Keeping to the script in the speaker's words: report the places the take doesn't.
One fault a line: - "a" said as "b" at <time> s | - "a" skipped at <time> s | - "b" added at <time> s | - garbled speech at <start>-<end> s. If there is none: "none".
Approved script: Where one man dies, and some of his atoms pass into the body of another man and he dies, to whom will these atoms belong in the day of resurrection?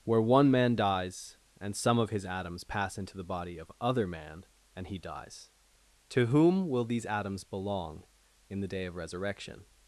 - "another" said as "other" at 3.8 s